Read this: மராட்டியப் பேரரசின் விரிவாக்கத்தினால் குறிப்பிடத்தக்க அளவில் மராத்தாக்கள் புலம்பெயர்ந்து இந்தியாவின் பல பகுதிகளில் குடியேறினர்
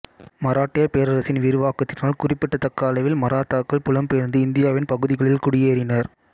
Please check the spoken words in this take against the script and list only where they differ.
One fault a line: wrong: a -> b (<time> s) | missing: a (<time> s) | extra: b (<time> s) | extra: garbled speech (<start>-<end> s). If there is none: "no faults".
missing: பல (4.9 s)